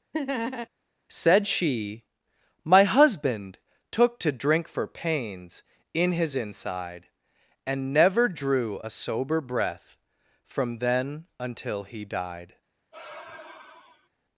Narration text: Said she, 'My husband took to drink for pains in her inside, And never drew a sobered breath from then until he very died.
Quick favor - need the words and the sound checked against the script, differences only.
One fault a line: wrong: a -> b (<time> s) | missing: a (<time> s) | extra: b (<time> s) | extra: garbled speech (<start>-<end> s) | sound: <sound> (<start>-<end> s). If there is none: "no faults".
sound: laugh (0.1-0.7 s)
wrong: her -> his (6.1 s)
wrong: sobered -> sober (8.9 s)
missing: very (12.1 s)
sound: sigh (12.9-14.1 s)